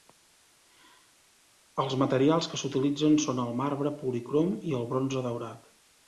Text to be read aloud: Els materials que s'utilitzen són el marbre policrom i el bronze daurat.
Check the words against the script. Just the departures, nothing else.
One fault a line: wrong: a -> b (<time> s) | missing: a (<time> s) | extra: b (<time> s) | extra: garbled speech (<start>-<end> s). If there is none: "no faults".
no faults